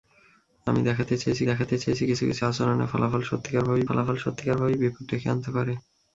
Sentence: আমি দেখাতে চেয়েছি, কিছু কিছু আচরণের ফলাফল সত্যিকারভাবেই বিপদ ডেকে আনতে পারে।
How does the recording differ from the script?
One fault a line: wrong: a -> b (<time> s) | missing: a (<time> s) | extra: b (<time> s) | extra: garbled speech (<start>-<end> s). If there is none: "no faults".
extra: দেখাতে চেয়েছি (1.5 s)
extra: ফলাফল সত্যিকারভাবেই (3.9 s)